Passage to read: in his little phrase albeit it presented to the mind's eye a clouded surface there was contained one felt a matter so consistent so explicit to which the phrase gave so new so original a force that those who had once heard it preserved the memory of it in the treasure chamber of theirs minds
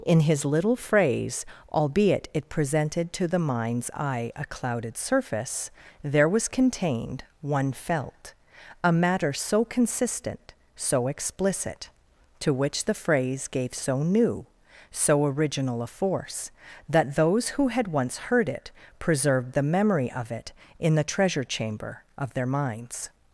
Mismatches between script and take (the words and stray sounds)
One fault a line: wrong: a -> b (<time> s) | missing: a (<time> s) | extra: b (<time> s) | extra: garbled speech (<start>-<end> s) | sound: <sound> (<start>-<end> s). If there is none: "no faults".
wrong: theirs -> their (22.3 s)